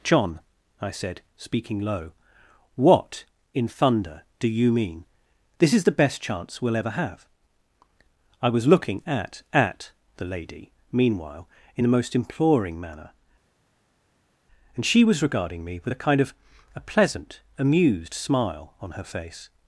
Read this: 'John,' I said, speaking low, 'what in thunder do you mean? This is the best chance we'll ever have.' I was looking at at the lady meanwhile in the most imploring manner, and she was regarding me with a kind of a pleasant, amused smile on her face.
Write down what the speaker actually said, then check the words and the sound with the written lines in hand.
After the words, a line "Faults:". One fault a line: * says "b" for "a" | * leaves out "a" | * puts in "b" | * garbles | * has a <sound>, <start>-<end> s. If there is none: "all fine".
'John,' I said, speaking low, 'what in thunder do you mean? This is the best chance we'll ever have.' I was looking at at the lady meanwhile in the most imploring manner, and she was regarding me with a kind of a pleasant, amused smile on her face.
Faults:
all fine